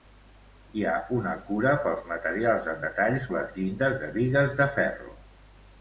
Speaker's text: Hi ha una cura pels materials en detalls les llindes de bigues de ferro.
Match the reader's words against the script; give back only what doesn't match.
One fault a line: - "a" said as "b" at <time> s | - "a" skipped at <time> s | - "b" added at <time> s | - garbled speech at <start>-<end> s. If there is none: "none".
none